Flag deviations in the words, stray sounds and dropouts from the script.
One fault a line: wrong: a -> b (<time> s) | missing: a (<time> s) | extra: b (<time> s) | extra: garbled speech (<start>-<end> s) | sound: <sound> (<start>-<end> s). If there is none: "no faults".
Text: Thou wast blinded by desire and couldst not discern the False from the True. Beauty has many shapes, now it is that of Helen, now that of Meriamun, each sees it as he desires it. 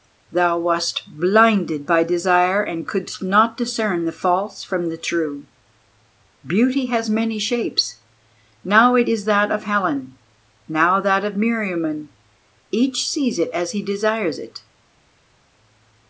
no faults